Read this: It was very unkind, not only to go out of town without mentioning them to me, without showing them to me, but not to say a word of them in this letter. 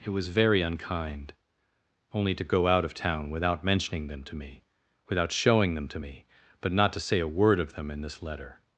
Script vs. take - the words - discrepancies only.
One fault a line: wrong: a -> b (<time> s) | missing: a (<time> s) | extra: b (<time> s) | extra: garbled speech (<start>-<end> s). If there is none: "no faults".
missing: not (1.3 s)